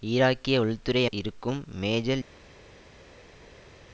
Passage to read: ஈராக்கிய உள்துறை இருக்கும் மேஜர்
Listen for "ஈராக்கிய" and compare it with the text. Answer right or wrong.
right